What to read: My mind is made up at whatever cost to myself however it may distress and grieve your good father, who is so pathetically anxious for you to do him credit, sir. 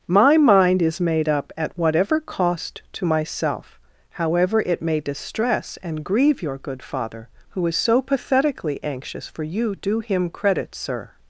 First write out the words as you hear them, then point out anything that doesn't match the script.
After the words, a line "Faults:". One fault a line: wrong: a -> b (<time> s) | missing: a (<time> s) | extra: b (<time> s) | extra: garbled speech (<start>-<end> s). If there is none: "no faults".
My mind is made up at whatever cost to myself however it may distress and grieve your good father, who is so pathetically anxious for you do him credit, sir.
Faults:
missing: to (9.7 s)